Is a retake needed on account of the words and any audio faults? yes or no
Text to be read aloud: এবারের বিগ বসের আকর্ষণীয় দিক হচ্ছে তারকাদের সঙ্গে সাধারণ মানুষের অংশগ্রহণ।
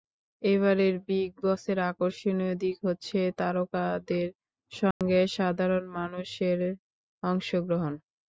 yes